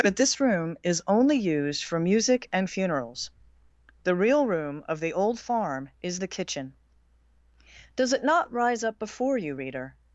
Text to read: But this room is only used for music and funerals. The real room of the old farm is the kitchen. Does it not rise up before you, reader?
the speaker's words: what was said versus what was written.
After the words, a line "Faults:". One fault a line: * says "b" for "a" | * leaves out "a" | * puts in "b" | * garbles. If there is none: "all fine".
But this room is only used for music and funerals. The real room of the old farm is the kitchen. Does it not rise up before you, reader?
Faults:
all fine